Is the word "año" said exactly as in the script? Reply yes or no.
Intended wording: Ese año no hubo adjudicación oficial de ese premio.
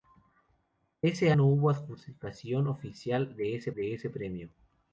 no